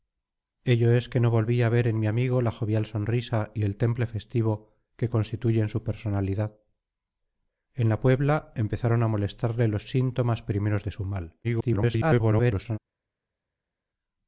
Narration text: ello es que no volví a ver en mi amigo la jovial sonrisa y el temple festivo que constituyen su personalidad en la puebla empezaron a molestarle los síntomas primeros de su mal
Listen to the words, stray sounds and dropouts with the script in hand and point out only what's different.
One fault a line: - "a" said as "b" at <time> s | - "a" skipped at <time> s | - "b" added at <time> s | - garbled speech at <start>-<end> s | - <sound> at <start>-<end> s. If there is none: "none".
- garbled speech at 11.4-12.8 s